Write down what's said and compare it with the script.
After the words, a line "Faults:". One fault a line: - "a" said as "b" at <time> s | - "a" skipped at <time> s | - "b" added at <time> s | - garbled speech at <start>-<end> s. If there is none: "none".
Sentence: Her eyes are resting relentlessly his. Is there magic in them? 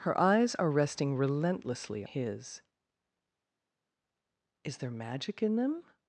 Her eyes are resting relentlessly his. Is there magic in them?
Faults:
none